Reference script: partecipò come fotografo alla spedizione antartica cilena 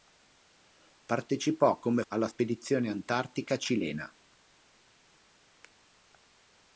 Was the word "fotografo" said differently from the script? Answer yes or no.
yes